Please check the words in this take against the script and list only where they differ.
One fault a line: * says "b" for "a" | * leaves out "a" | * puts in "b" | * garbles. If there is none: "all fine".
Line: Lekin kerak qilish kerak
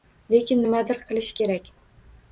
* says "nimadir" for "kerak"